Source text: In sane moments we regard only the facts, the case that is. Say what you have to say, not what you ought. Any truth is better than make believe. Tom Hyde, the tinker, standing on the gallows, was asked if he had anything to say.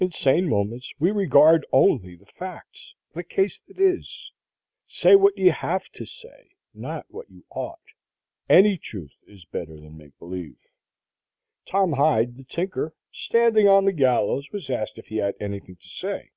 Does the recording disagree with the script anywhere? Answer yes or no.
no